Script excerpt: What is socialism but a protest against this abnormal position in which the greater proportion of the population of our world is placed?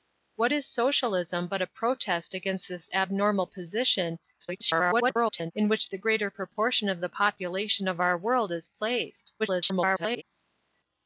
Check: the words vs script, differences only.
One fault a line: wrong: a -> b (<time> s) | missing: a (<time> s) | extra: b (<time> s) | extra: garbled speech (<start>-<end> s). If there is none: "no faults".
extra: garbled speech (4.4-5.5 s)
extra: garbled speech (9.4-10.2 s)